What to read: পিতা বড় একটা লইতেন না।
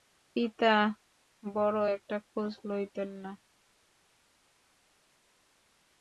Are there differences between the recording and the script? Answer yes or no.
yes